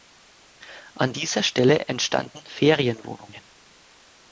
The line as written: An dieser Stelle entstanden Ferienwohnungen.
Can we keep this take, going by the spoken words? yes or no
yes